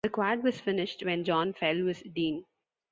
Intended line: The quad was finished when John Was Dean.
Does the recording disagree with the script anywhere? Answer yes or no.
yes